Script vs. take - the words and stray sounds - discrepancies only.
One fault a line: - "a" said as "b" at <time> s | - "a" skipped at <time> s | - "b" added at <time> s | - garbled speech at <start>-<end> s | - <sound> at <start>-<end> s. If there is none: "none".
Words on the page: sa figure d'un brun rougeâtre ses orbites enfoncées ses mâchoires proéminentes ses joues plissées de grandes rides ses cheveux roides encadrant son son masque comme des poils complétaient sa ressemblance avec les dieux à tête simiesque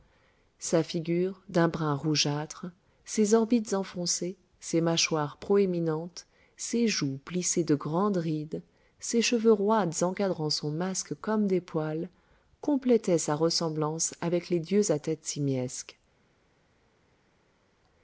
- "son" skipped at 10.7 s